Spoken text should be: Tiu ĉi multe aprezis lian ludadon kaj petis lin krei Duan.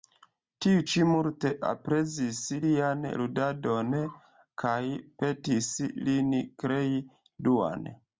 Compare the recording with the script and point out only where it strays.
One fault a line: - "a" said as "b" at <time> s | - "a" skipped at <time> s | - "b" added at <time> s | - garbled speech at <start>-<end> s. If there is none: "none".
none